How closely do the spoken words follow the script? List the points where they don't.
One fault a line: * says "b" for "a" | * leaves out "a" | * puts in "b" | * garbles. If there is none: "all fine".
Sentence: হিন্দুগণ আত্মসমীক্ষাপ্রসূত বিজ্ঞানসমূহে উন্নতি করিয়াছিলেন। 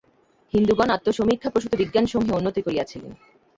all fine